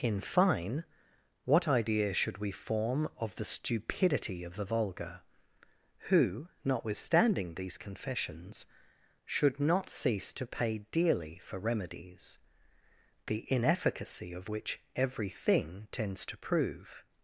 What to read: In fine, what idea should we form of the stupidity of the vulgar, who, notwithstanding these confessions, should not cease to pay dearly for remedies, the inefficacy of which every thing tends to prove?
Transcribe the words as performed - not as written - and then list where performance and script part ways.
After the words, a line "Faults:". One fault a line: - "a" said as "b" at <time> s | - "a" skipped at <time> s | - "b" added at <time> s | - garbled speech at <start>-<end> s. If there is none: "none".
In fine, what idea should we form of the stupidity of the vulgar, who, notwithstanding these confessions, should not cease to pay dearly for remedies, the inefficacy of which every thing tends to prove?
Faults:
none